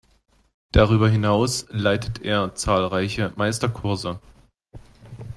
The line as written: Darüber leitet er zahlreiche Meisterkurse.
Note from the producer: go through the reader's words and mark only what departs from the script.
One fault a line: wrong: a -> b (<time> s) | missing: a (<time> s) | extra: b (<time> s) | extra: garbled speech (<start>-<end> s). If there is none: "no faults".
extra: hinaus (1.1 s)